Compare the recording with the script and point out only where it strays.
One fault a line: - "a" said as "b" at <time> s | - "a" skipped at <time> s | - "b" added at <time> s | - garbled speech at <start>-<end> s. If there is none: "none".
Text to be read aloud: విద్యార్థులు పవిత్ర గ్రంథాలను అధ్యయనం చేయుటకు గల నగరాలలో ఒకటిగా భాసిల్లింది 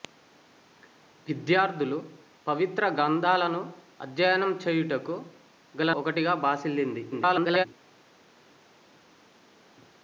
- "నగరాలలో" skipped at 5.9 s
- garbled speech at 7.1-7.7 s